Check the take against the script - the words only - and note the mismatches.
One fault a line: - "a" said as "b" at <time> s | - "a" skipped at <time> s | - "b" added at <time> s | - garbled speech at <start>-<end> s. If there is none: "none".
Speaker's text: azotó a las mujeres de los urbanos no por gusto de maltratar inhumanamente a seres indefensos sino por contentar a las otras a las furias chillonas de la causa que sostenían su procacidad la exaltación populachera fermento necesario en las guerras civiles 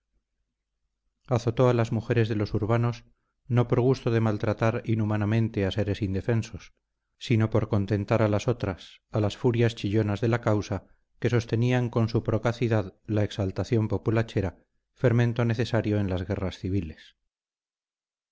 - "con" added at 11.9 s